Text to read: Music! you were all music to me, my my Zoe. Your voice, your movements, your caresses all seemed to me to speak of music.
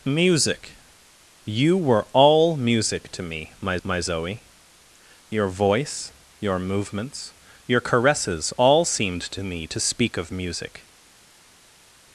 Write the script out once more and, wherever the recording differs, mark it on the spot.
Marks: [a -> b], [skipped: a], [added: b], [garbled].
Music! you were all music to me, my my Zoe. Your voice, your movements, your caresses all seemed to me to speak of music.